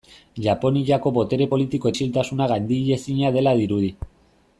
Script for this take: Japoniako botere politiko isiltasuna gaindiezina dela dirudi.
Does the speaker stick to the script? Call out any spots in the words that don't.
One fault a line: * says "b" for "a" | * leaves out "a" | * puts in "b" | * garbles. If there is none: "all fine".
all fine